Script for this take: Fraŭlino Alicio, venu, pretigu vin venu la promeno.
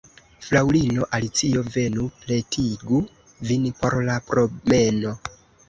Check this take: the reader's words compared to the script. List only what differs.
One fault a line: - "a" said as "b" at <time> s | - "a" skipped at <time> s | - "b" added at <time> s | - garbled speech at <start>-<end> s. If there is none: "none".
- "venu" said as "por" at 3.8 s